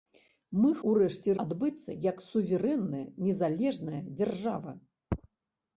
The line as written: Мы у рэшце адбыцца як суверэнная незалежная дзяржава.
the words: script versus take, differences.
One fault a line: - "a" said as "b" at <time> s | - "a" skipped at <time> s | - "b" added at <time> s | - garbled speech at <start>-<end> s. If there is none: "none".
none